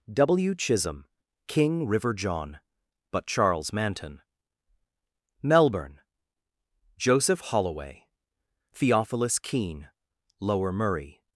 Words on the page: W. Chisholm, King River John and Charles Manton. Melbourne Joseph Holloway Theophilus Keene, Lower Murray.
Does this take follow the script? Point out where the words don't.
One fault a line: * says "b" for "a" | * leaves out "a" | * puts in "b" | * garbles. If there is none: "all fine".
* says "but" for "and"